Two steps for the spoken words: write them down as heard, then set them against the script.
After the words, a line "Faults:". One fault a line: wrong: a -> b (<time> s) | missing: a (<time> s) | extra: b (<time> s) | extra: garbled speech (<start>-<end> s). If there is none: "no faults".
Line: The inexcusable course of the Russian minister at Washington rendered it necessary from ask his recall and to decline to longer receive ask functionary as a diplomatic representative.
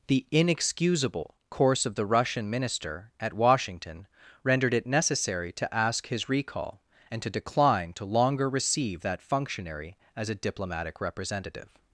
The inexcusable course of the Russian minister at Washington rendered it necessary to ask his recall and to decline to longer receive that functionary as a diplomatic representative.
Faults:
wrong: from -> to (5.5 s)
wrong: ask -> that (9.0 s)